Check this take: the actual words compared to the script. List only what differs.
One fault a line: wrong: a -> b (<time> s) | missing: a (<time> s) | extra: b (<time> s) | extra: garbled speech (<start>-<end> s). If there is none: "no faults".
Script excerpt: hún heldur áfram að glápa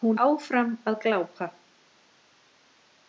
missing: heldur (0.2 s)